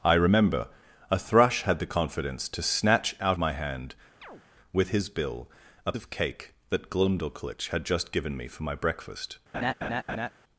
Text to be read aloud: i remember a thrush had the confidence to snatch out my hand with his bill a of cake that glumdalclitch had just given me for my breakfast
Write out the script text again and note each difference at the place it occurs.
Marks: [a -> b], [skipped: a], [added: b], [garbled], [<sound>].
i remember a thrush had the confidence to snatch out my hand [chirp] with his bill a of cake that glumdalclitch had just given me for my breakfast [laugh]